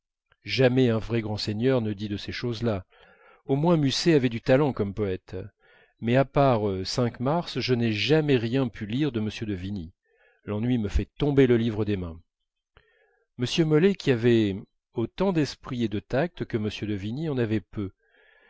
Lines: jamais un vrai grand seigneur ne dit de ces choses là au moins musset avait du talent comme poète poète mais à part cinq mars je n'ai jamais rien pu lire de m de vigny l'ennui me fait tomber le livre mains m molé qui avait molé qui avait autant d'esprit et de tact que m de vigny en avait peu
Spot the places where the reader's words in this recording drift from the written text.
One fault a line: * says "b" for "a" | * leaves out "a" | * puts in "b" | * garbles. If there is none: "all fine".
* leaves out "poète"
* puts in "des"
* leaves out "molé qui avait"